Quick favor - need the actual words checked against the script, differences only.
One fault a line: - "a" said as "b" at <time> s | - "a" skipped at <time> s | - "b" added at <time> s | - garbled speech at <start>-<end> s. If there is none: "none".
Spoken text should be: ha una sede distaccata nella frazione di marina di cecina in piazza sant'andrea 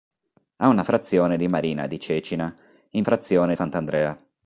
- "sede distaccata nella" skipped at 0.8 s
- "piazza" said as "frazione" at 3.0 s